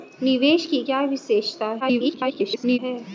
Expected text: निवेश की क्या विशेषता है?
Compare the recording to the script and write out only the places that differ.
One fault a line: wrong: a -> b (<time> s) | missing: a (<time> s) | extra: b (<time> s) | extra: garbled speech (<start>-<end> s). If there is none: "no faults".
extra: garbled speech (1.8-2.8 s)